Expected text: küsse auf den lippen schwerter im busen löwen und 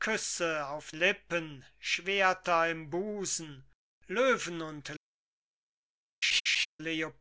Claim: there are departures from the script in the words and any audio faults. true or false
true